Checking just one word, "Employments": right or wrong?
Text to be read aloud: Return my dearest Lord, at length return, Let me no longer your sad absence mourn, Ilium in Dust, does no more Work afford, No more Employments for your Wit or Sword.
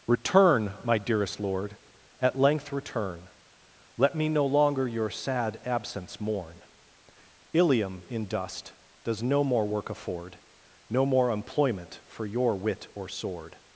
wrong